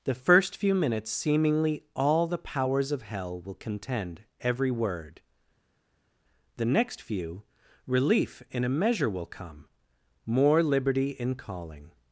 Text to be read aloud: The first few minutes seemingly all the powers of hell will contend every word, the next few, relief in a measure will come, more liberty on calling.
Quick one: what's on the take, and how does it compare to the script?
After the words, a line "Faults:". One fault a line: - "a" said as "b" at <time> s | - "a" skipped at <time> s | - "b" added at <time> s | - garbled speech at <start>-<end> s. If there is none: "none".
The first few minutes seemingly all the powers of hell will contend every word, the next few, relief in a measure will come, more liberty in calling.
Faults:
- "on" said as "in" at 11.1 s